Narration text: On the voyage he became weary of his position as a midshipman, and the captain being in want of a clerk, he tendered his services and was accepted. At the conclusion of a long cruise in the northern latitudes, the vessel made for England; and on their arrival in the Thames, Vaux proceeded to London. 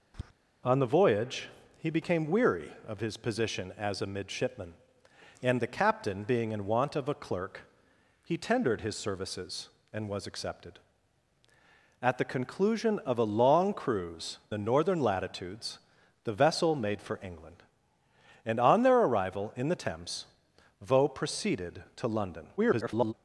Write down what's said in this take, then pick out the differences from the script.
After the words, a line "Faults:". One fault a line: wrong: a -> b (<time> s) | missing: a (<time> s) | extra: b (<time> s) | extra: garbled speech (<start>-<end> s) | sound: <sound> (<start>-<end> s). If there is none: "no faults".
On the voyage he became weary of his position as a midshipman, and the captain being in want of a clerk, he tendered his services and was accepted. At the conclusion of a long cruise the northern latitudes, the vessel made for England; and on their arrival in the Thames, Vaux proceeded to London. [garbled]
Faults:
sound: tap (0.1-0.3 s)
missing: in (14.4 s)
extra: garbled speech (22.6-23.1 s)